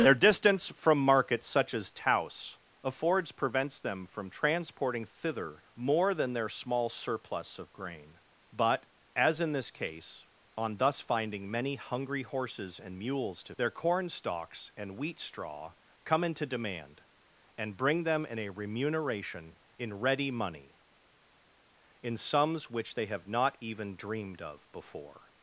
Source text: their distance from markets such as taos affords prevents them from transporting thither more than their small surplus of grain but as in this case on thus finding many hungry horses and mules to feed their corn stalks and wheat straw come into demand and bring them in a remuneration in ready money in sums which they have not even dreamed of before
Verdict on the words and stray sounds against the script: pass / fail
fail